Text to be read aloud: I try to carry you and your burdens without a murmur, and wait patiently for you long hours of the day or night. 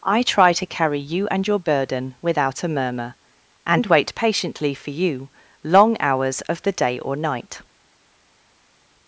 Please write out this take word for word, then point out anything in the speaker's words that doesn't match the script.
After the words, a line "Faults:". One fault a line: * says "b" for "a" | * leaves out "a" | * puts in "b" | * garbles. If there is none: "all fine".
I try to carry you and your burden without a murmur, and wait patiently for you long hours of the day or night.
Faults:
* says "burden" for "burdens"